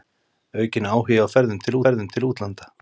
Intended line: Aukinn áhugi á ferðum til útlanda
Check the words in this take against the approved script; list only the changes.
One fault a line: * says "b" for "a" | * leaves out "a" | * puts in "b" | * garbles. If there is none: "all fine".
* puts in "ferðum til"